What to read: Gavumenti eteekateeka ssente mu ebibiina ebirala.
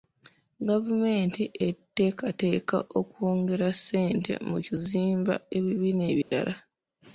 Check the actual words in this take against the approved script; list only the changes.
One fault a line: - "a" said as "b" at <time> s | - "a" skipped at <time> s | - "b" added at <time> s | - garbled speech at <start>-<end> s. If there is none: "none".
- "okwongera" added at 3.0 s
- "kuzimba" added at 4.6 s